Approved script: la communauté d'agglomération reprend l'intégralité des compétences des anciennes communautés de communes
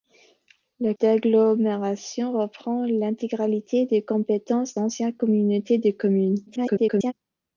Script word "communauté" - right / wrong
wrong